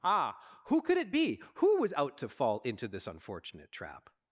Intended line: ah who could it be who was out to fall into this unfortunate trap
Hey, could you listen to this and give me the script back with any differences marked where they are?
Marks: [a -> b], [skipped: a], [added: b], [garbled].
ah who could it be who was out to fall into this unfortunate trap